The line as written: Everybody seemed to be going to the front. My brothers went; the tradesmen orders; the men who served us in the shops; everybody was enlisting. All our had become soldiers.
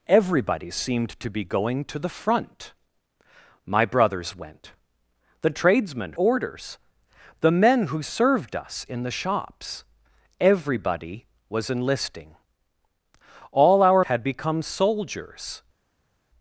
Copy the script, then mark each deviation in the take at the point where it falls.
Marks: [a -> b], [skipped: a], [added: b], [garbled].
Everybody seemed to be going to the front. My brothers went; the tradesmen orders; the men who served us in the shops; everybody was enlisting. All our had become soldiers.